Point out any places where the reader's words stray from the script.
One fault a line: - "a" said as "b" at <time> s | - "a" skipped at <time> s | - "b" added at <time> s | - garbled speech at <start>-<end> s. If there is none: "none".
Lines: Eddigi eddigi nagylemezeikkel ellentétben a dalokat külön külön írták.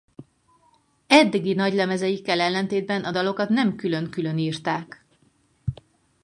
- "eddigi" skipped at 1.5 s
- "nem" added at 3.5 s